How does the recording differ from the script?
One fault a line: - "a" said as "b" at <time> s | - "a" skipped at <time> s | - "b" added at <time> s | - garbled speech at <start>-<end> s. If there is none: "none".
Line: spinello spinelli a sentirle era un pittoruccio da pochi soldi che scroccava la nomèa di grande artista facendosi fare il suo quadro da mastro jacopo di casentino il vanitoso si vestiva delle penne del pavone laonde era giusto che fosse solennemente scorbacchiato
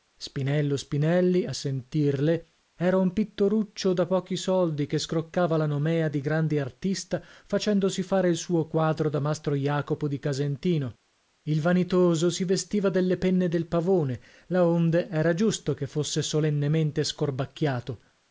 none